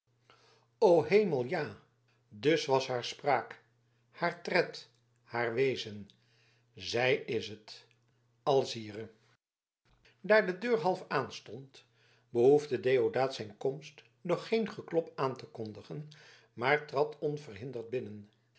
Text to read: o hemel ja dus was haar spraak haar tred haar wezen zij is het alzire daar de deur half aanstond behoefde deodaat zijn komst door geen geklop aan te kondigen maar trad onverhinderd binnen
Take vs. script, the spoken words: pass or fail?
pass